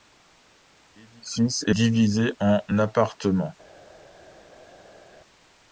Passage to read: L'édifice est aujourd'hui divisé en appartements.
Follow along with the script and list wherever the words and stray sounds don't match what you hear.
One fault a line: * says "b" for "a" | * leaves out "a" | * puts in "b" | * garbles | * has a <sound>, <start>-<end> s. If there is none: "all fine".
* leaves out "aujourd'hui"